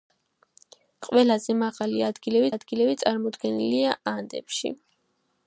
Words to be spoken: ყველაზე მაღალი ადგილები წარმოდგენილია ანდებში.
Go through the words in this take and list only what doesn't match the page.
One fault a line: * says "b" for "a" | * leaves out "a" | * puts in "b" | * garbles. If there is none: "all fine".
* puts in "ადგილები"